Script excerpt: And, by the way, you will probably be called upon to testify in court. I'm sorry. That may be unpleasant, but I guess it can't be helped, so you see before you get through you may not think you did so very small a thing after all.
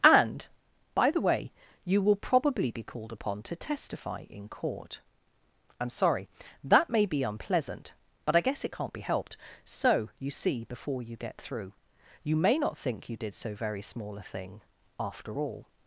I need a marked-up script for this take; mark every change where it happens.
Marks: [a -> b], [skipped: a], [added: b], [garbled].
And, by the way, you will probably be called upon to testify in court. I'm sorry. That may be unpleasant, but I guess it can't be helped, so you see before you get through you may not think you did so very small a thing after all.